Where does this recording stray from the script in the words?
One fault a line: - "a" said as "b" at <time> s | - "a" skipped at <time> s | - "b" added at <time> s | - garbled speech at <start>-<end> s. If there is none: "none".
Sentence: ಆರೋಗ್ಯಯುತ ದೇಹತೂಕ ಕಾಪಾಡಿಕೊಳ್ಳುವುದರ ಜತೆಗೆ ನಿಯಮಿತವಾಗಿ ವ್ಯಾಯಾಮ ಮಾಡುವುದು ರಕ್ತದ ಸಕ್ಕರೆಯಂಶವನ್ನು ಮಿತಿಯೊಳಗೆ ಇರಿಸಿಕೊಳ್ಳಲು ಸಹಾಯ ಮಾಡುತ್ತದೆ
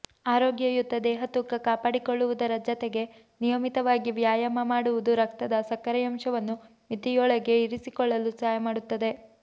none